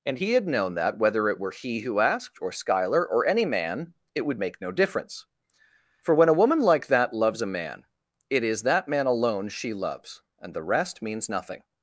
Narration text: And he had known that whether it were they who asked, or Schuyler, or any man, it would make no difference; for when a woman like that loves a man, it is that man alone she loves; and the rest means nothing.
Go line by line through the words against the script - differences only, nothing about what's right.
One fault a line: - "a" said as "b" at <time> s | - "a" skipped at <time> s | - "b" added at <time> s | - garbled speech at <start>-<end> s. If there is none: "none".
- "they" said as "he" at 1.5 s